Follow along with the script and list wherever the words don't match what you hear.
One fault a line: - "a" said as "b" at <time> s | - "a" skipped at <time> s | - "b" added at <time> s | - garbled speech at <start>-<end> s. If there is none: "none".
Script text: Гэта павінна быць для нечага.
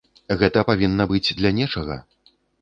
none